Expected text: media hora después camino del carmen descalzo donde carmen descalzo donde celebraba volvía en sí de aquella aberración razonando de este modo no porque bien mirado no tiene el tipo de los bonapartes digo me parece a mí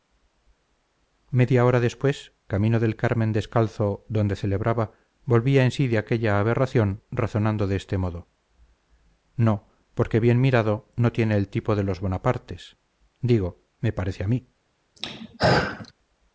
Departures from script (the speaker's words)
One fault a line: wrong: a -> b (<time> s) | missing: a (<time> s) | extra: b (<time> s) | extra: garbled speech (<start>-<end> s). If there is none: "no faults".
missing: carmen descalzo donde (4.3 s)